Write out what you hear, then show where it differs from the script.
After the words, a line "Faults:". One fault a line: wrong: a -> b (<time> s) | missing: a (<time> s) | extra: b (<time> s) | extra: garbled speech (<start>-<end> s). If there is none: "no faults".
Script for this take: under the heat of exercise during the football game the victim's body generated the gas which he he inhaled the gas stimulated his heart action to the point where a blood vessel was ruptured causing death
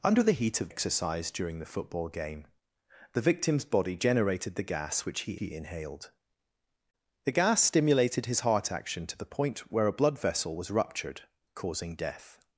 under the heat of exercise during the football game the victim's body generated the gas which he he inhaled the gas stimulated his heart action to the point where a blood vessel was ruptured causing death
Faults:
no faults